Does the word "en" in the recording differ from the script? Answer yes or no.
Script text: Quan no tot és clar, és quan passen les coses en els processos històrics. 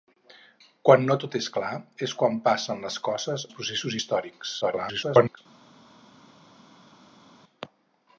yes